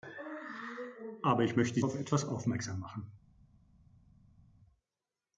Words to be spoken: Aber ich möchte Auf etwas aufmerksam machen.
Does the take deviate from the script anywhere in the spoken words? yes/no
no